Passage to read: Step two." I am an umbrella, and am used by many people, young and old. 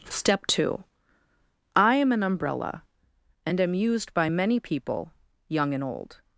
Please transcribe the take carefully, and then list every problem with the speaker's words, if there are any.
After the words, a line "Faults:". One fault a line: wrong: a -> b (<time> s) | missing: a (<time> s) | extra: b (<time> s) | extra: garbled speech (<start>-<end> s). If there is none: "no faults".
Step two." I am an umbrella, and am used by many people, young and old.
Faults:
no faults